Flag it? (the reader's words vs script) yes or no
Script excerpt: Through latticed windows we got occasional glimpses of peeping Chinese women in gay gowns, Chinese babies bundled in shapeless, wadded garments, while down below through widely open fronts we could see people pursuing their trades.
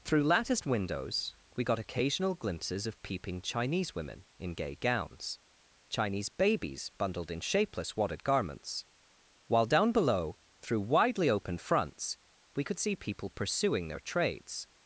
no